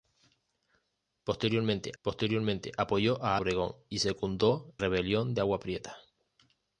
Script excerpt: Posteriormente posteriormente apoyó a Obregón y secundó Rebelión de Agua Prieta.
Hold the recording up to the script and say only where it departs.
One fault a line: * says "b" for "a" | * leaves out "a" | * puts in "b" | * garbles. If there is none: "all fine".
all fine